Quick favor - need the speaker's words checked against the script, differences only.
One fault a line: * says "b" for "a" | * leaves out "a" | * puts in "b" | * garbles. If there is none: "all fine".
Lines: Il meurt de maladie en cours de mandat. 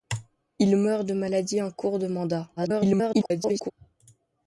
* garbles